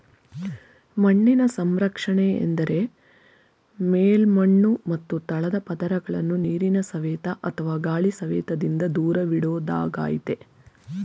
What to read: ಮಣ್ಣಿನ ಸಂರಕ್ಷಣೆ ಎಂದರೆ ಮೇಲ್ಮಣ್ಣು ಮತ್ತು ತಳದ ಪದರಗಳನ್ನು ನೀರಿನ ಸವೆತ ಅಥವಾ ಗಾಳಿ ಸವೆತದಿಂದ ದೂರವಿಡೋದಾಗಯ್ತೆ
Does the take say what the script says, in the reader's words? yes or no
yes